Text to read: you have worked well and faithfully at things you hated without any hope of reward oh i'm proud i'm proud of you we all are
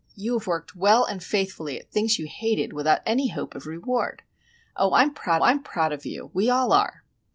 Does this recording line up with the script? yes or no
yes